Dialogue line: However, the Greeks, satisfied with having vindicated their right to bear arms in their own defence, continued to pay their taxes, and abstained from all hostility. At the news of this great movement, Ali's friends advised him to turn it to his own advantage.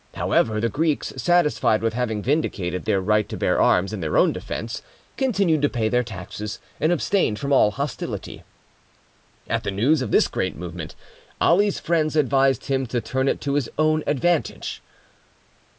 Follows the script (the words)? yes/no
yes